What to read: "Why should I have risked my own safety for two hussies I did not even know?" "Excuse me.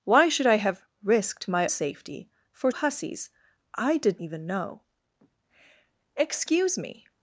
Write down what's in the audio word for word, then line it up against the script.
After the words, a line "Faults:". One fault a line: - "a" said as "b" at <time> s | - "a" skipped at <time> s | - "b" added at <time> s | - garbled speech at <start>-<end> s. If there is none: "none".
"Why should I have risked my safety for hussies I did even know?" "Excuse me.
Faults:
- "own" skipped at 1.7 s
- "two" skipped at 2.7 s
- "not" skipped at 4.2 s